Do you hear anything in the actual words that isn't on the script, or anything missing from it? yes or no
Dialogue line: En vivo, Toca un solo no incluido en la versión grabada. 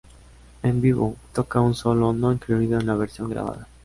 no